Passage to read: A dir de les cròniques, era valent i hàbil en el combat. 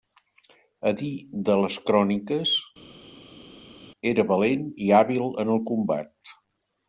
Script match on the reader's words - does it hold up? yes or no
yes